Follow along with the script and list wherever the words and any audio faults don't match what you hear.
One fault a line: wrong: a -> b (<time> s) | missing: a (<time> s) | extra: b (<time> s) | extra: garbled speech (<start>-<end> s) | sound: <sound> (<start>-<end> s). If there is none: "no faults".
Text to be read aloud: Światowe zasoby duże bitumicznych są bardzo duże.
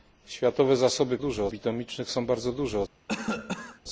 sound: cough (3.1-3.8 s)